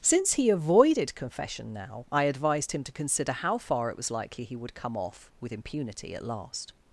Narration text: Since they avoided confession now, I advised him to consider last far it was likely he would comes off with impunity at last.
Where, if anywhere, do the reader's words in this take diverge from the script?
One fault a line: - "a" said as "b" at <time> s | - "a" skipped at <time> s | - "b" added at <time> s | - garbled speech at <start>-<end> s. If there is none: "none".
- "they" said as "he" at 0.3 s
- "last" said as "how" at 3.3 s
- "comes" said as "come" at 4.7 s